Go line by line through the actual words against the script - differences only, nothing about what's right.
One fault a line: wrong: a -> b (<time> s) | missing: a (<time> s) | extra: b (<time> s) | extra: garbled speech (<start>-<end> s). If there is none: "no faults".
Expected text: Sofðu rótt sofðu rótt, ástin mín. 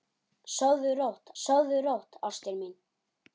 no faults